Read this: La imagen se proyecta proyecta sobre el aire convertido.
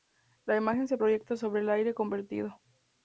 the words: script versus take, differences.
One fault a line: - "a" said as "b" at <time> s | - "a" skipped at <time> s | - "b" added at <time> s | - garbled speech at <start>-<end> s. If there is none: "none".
- "proyecta" skipped at 1.3 s